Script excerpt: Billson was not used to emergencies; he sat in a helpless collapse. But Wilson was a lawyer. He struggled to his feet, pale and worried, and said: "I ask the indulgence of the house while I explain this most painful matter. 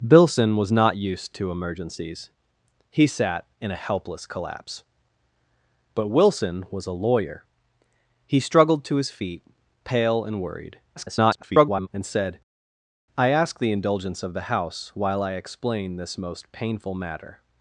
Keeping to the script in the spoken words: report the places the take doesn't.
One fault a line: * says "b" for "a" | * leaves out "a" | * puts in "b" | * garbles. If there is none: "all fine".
* garbles